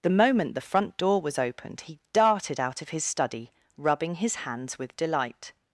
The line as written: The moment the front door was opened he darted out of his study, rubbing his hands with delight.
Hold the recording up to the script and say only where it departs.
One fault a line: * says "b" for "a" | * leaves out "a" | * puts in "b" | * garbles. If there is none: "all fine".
all fine